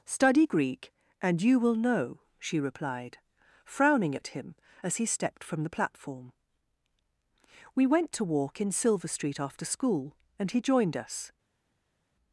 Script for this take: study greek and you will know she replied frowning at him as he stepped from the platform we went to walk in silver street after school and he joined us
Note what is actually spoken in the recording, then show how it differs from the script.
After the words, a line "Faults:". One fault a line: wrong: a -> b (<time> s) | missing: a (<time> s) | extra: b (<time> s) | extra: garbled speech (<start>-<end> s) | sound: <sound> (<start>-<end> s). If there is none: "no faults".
study greek and you will know she replied frowning at him as he stepped from the platform we went to walk in silver street after school and he joined us
Faults:
no faults